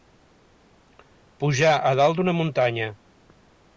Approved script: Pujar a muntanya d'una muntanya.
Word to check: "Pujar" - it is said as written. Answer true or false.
true